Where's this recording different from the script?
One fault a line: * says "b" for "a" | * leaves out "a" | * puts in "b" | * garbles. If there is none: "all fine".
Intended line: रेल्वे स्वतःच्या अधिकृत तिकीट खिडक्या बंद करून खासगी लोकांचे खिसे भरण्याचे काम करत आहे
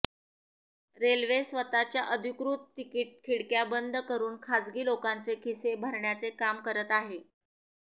all fine